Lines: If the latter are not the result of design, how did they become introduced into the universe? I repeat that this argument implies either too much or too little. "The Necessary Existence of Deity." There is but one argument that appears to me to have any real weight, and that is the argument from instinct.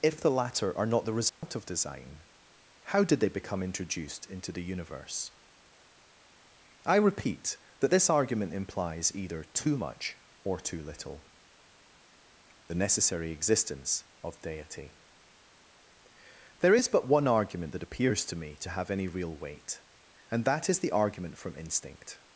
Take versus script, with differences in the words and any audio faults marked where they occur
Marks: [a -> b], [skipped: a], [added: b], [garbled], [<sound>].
If the latter are not the result [dropout] of design, how did they become introduced into the universe? I repeat that this argument implies either too much or too little. "The Necessary Existence of Deity." There is but one argument that appears to me to have any real weight, and that is the argument from instinct.